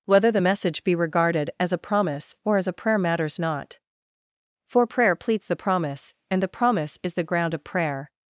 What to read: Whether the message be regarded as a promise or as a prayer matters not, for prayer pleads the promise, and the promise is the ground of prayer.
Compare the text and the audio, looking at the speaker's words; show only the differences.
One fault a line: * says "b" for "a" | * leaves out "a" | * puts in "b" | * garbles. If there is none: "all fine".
all fine